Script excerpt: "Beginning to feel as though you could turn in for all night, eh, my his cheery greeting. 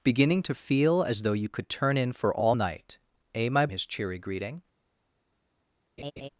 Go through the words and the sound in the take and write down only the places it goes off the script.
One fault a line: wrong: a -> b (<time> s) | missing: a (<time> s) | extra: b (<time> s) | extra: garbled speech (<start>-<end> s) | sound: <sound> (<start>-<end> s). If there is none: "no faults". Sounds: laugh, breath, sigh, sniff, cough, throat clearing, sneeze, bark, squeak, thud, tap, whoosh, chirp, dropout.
sound: laugh (6.0-6.3 s)